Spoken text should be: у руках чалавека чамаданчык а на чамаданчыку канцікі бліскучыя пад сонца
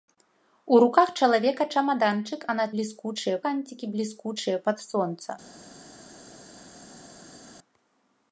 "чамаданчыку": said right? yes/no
no